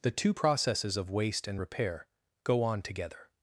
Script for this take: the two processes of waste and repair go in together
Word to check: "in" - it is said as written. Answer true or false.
false